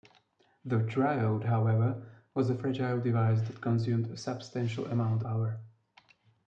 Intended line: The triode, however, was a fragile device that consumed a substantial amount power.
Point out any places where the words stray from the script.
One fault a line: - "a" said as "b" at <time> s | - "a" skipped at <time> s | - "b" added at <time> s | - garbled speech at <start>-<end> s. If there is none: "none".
none